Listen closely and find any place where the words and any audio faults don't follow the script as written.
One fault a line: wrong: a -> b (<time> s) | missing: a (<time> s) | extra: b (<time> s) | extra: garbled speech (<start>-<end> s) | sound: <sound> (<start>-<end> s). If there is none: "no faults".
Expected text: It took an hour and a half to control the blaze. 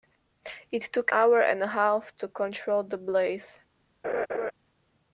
missing: an (1.1 s)
sound: laugh (4.0-4.5 s)